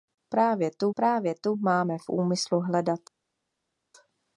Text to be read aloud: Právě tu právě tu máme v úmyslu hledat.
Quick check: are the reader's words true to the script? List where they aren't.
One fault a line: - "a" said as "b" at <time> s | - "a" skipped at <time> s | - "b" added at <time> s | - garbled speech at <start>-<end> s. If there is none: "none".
none